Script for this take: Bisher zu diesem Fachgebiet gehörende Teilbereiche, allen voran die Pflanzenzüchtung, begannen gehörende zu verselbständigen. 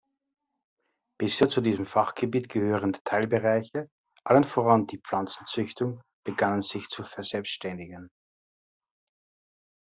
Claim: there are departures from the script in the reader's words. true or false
true